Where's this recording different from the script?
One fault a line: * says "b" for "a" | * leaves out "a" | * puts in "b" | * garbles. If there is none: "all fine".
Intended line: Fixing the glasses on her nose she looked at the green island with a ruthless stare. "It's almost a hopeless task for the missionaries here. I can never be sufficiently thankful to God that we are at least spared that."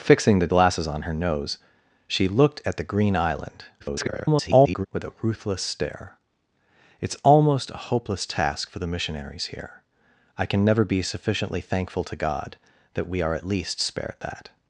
* garbles